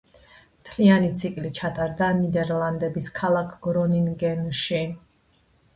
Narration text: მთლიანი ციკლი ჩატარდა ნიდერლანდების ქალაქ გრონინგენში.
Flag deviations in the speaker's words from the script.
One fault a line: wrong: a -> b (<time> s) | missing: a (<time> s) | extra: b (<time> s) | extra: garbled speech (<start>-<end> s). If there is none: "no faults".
no faults